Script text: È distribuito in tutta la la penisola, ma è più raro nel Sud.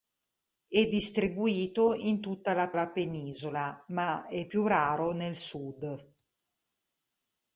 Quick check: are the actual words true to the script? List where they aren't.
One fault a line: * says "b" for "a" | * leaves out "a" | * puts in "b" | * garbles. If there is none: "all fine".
all fine